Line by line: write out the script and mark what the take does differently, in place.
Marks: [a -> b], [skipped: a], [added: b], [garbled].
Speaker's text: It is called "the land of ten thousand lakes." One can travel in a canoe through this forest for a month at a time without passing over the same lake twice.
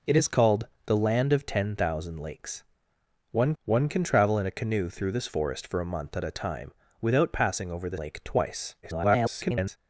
It is called "the land of ten thousand lakes." One [added: one] can travel in a canoe through this forest for a month at a time without passing over the [skipped: same] lake twice. [garbled]